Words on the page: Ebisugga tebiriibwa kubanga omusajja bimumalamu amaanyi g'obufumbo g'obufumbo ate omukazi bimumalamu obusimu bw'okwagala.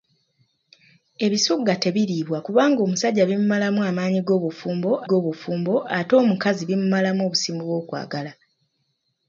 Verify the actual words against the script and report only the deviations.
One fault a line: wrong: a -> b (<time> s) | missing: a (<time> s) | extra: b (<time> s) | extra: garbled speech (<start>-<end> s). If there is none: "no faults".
no faults